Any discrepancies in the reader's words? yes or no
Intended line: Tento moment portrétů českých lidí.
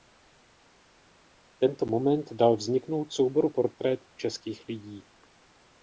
yes